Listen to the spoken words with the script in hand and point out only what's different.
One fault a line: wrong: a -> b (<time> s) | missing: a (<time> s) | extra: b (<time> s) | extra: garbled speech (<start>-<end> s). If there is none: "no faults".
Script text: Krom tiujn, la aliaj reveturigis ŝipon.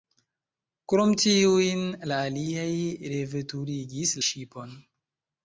no faults